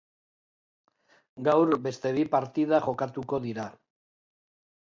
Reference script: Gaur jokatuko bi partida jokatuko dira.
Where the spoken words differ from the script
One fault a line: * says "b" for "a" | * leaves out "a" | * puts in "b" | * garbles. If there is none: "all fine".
* says "beste" for "jokatuko"